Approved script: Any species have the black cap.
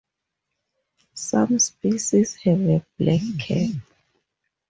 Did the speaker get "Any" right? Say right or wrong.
wrong